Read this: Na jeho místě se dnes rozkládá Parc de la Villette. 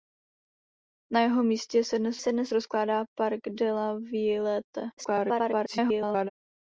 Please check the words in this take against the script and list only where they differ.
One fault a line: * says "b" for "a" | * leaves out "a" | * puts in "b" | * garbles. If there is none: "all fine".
* puts in "se dnes"
* garbles